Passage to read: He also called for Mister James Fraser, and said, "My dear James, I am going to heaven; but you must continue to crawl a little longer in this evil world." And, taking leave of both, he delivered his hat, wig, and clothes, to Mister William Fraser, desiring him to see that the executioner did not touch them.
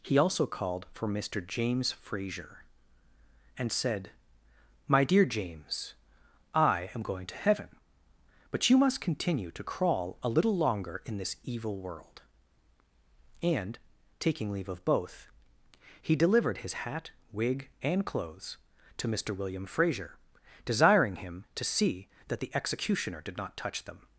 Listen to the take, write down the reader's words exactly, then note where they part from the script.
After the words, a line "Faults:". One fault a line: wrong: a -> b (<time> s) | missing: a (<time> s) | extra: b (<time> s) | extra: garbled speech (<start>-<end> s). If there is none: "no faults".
He also called for Mister James Fraser, and said, "My dear James, I am going to heaven; but you must continue to crawl a little longer in this evil world." And, taking leave of both, he delivered his hat, wig, and clothes, to Mister William Fraser, desiring him to see that the executioner did not touch them.
Faults:
no faults